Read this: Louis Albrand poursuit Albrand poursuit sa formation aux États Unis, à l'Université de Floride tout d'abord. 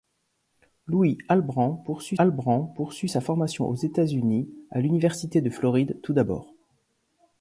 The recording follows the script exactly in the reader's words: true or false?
true